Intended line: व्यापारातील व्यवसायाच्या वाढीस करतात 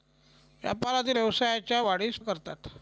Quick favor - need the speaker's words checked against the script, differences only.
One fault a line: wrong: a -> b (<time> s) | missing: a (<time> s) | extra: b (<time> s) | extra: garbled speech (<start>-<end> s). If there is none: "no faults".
no faults